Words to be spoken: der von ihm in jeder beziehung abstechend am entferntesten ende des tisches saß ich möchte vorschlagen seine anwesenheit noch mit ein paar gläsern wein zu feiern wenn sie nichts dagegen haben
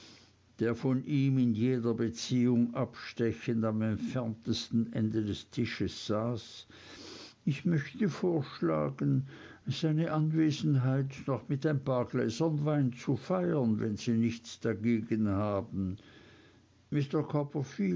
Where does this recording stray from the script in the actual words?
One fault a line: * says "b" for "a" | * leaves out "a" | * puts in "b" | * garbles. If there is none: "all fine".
all fine